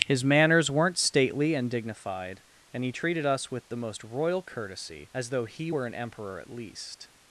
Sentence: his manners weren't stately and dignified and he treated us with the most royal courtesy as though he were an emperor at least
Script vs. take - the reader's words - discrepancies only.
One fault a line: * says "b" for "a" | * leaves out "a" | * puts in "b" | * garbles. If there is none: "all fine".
all fine